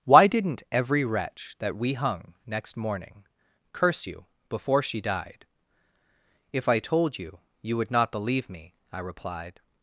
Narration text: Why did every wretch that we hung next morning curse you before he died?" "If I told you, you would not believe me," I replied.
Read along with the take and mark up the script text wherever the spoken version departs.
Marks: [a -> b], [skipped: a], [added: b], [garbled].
Why [did -> didn't] every wretch that we hung next morning curse you before [he -> she] died?" "If I told you, you would not believe me," I replied.